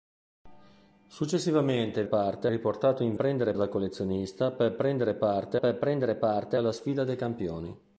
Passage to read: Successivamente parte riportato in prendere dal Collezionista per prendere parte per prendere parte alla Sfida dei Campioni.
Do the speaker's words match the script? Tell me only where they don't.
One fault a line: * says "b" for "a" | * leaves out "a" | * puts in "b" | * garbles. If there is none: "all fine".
all fine